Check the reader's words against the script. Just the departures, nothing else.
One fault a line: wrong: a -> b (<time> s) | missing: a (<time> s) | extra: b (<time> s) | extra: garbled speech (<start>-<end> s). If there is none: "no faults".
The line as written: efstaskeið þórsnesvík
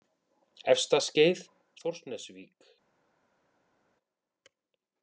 no faults